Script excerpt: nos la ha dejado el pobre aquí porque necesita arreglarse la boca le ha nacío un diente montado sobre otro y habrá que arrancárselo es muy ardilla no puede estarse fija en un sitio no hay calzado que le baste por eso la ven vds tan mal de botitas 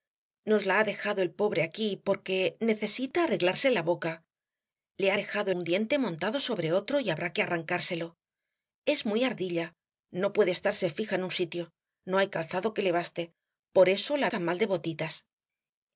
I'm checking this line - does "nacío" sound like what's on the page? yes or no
no